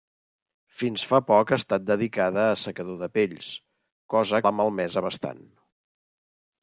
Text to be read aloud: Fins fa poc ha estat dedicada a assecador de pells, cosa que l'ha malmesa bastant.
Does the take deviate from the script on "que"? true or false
true